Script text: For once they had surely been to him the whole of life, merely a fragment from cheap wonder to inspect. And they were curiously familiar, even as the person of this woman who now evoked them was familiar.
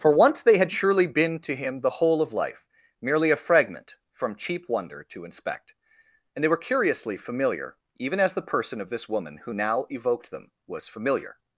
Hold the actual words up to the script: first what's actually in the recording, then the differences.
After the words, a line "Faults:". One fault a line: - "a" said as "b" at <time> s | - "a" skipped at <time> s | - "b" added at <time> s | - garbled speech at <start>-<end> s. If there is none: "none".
For once they had surely been to him the whole of life, merely a fragment from cheap wonder to inspect. And they were curiously familiar, even as the person of this woman who now evoked them was familiar.
Faults:
none